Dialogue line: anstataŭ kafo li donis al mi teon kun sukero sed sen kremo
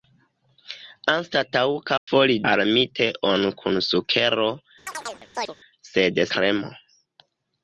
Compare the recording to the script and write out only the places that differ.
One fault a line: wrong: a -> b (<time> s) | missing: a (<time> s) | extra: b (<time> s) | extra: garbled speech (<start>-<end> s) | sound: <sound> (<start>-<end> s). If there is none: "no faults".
sound: dropout (2.0-2.1 s)
missing: donis (2.4 s)
sound: chirp (4.9-5.5 s)
missing: sen (6.2 s)